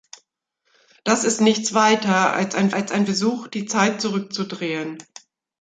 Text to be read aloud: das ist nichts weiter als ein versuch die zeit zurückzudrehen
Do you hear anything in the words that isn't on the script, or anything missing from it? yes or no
yes